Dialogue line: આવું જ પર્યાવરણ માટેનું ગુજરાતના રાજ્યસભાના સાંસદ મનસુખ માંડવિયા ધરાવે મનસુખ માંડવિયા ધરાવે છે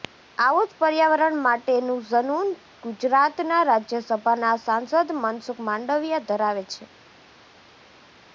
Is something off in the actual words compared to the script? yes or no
yes